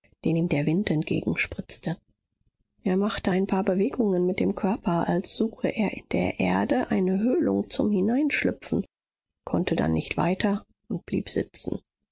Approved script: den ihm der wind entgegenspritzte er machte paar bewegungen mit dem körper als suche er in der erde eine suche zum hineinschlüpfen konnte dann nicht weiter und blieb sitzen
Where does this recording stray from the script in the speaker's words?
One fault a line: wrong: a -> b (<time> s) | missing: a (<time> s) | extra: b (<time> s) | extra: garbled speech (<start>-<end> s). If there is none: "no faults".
extra: ein (3.3 s)
wrong: suche -> höhlung (7.2 s)